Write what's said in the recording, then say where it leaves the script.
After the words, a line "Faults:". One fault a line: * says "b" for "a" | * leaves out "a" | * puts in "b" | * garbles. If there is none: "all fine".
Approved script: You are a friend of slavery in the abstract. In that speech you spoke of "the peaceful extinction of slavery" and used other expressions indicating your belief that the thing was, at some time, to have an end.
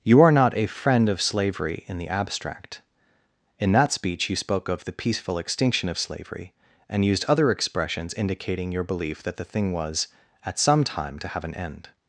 You are not a friend of slavery in the abstract. In that speech you spoke of "the peaceful extinction of slavery" and used other expressions indicating your belief that the thing was, at some time, to have an end.
Faults:
* puts in "not"